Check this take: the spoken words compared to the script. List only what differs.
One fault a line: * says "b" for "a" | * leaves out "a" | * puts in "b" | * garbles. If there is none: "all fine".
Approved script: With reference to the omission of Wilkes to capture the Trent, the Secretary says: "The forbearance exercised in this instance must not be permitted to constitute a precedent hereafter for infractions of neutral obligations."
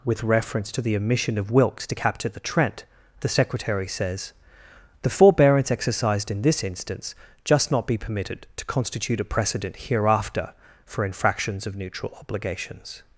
* says "just" for "must"